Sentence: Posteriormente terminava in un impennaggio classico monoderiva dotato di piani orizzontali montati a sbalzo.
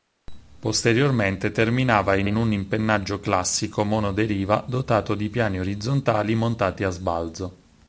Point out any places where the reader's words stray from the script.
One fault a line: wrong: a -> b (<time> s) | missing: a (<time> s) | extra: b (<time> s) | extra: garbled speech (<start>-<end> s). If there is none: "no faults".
extra: in (2.2 s)